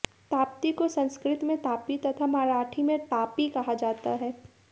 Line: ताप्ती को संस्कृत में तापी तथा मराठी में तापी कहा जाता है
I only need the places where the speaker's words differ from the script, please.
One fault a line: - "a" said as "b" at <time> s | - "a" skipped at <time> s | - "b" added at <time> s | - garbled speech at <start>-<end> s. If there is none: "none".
none